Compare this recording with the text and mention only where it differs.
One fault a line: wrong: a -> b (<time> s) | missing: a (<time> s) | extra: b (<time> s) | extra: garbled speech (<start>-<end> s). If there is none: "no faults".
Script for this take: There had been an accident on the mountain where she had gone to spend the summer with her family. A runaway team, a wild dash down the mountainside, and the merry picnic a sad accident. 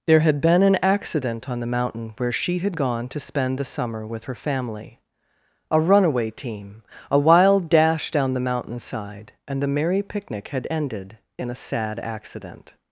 extra: had ended in (10.5 s)